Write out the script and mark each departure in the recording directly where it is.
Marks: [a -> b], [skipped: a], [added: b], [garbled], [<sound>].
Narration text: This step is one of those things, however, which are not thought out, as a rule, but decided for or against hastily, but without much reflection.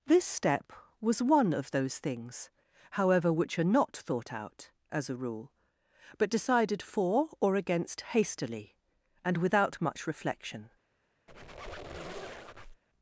This step [is -> was] one of those things, however, which are not thought out, as a rule, but decided for or against hastily, [but -> and] without much reflection. [squeak]